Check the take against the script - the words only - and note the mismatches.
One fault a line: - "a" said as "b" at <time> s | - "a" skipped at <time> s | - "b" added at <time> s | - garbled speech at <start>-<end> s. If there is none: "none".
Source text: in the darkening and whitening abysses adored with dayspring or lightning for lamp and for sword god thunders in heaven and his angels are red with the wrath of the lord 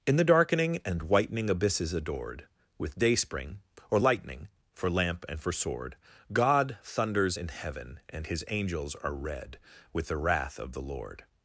none